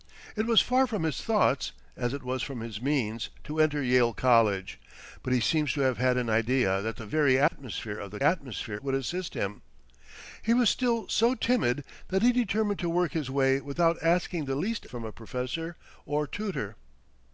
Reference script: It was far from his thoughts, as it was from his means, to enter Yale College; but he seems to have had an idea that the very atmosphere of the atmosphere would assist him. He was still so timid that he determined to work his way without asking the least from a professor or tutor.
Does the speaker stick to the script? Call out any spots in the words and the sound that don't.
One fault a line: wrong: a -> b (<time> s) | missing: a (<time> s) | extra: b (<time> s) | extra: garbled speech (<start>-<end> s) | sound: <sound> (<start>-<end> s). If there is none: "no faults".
sound: dropout (7.5-7.5 s)